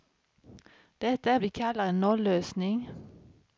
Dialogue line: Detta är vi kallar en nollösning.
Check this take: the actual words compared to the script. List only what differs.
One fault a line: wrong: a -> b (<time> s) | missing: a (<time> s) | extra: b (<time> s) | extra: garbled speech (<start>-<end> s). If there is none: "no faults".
no faults